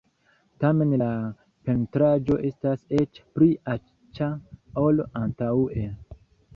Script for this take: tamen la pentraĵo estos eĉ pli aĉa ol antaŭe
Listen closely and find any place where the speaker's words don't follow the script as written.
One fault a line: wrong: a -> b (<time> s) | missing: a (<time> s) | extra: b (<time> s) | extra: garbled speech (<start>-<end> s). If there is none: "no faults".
wrong: estos -> estas (2.5 s)